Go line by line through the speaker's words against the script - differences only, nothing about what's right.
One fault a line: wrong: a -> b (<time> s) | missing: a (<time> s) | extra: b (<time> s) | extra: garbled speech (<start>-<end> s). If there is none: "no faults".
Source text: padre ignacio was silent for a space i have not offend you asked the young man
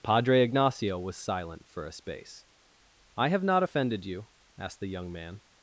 wrong: offend -> offended (3.6 s)